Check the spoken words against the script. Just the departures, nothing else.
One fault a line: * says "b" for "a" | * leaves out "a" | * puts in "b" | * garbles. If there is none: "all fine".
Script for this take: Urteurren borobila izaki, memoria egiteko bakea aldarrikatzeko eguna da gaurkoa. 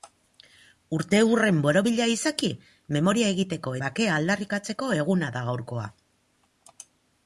all fine